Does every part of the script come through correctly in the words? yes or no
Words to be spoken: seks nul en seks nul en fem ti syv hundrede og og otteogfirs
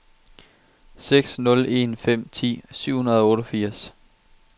no